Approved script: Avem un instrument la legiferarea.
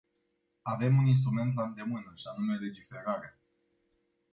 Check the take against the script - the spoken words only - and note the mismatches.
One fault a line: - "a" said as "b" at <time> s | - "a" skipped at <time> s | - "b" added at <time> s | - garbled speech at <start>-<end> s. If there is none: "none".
- "îndemână și anume" added at 1.6 s